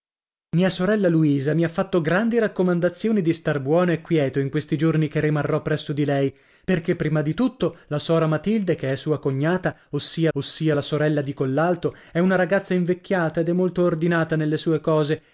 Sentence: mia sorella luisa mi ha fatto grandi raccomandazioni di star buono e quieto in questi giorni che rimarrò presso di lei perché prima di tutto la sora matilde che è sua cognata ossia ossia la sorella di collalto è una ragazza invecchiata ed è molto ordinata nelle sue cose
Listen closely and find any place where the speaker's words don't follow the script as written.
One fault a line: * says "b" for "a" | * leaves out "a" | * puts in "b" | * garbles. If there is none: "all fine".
all fine